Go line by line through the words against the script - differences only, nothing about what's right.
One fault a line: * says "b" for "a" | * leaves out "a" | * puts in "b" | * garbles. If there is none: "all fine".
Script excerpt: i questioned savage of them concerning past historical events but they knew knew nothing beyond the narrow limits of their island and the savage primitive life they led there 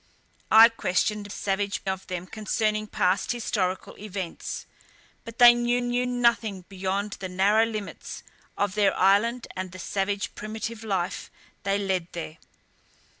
all fine